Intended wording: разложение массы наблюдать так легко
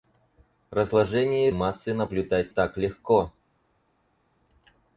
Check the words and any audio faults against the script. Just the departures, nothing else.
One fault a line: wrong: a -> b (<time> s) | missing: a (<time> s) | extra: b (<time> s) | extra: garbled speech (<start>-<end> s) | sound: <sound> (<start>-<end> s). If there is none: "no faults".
no faults